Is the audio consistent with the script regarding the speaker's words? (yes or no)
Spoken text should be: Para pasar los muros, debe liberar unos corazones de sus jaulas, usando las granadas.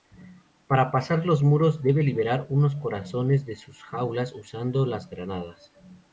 yes